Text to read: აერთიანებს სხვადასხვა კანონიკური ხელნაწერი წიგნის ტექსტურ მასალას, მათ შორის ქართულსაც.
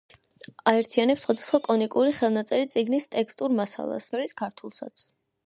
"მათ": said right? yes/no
no